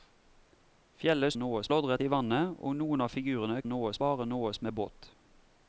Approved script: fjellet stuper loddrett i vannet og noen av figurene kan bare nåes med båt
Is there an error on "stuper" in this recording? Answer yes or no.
yes